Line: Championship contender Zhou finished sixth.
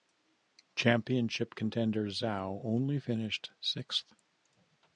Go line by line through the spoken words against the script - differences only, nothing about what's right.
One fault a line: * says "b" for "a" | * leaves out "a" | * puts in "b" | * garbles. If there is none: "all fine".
* puts in "only"